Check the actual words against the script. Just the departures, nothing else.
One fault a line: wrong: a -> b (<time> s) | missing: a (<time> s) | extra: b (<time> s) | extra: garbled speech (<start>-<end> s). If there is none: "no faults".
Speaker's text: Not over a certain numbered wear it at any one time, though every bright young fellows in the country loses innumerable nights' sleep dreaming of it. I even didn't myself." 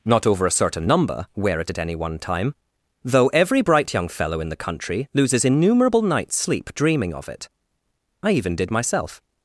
wrong: numbered -> number (0.9 s)
wrong: fellows -> fellow (4.1 s)
wrong: didn't -> did (8.6 s)